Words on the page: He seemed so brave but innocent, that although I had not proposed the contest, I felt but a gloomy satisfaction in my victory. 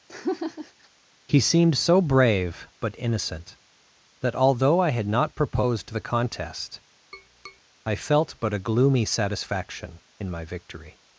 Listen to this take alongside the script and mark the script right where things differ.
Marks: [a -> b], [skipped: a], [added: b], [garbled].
He seemed so brave but innocent, that although I had not proposed the contest, I felt but a gloomy satisfaction in my victory.